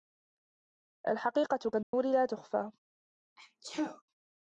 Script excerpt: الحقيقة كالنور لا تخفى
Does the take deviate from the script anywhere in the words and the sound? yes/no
yes